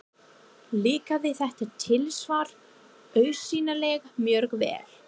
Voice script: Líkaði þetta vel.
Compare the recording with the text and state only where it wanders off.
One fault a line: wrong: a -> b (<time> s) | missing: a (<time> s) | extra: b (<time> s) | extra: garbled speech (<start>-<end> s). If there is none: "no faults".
extra: tilsvar augsýnilega mjög (1.9 s)